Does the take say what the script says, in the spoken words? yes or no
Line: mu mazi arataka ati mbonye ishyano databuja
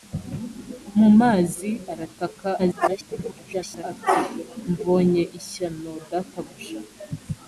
no